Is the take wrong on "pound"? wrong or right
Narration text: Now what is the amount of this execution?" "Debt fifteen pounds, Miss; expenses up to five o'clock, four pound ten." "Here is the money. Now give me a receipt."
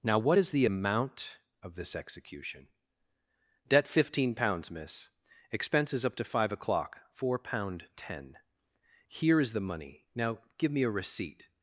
right